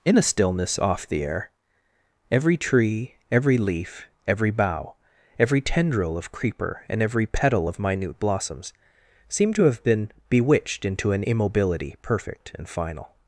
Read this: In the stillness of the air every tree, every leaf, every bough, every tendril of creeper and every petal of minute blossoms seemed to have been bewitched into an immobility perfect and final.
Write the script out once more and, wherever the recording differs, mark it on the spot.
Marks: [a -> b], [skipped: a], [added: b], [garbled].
In the stillness [of -> off] the air every tree, every leaf, every bough, every tendril of creeper and every petal of minute blossoms seemed to have been bewitched into an immobility perfect and final.